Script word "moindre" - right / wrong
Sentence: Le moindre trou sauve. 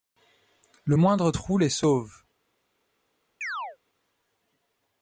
right